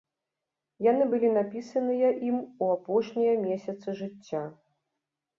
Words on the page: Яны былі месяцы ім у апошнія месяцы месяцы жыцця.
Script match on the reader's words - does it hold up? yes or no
no